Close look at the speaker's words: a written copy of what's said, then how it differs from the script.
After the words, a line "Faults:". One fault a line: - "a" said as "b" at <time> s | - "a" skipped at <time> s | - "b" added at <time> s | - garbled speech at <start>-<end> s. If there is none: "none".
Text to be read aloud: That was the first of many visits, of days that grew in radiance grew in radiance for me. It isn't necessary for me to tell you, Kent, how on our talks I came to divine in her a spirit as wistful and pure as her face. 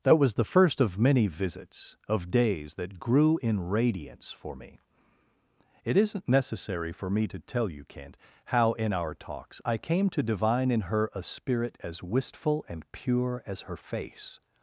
That was the first of many visits, of days that grew in radiance for me. It isn't necessary for me to tell you, Kent, how in our talks I came to divine in her a spirit as wistful and pure as her face.
Faults:
- "grew in radiance" skipped at 4.3 s
- "on" said as "in" at 8.7 s